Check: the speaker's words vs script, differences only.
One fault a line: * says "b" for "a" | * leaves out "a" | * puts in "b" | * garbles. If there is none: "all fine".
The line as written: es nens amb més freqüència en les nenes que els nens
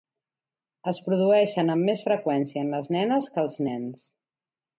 * says "produeixen" for "nens"